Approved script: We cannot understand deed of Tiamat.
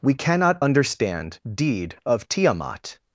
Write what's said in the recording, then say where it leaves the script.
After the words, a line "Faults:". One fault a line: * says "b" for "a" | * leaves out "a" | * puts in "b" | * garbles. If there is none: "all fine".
We cannot understand deed of Tiamat.
Faults:
all fine